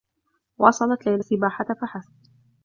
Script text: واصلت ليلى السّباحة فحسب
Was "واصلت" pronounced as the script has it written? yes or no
yes